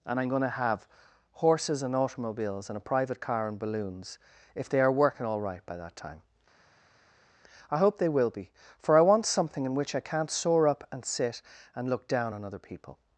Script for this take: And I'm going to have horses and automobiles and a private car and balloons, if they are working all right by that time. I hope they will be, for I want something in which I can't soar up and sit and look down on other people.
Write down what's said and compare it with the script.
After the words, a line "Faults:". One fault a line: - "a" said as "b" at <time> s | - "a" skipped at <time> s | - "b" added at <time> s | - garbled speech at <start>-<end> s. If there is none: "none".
And I'm going to have horses and automobiles and a private car and balloons, if they are working all right by that time. I hope they will be, for I want something in which I can't soar up and sit and look down on other people.
Faults:
none